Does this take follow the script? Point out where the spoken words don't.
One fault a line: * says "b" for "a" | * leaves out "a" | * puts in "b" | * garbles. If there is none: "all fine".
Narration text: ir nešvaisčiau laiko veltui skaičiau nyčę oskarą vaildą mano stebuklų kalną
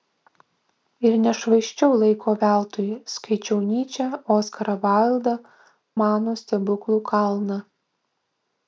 all fine